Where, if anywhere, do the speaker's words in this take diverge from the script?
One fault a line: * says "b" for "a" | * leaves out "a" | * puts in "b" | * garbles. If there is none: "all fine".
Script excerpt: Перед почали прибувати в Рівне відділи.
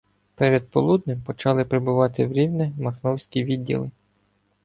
* puts in "полуднем"
* puts in "махновські"